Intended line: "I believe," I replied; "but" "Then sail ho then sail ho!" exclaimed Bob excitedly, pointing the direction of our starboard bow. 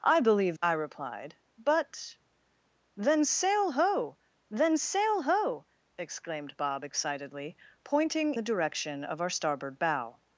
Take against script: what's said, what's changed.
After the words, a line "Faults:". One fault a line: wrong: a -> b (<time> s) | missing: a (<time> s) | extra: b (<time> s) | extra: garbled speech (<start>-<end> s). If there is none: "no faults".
"I believe," I replied; "but" "Then sail ho then sail ho!" exclaimed Bob excitedly, pointing the direction of our starboard bow.
Faults:
no faults